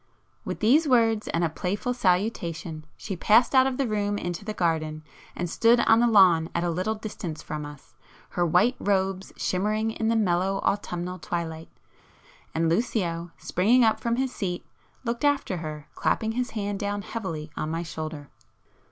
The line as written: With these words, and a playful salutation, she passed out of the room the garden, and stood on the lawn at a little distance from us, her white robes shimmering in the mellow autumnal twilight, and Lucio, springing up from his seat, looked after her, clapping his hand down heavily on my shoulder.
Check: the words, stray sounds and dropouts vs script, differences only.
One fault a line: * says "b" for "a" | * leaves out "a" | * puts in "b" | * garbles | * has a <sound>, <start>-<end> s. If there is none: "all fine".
* puts in "into"